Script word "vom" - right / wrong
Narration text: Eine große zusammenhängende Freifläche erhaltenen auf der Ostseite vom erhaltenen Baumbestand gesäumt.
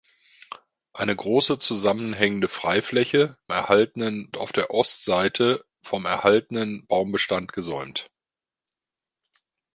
right